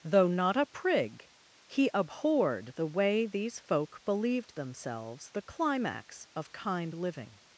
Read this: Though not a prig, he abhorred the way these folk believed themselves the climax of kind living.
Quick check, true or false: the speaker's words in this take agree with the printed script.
true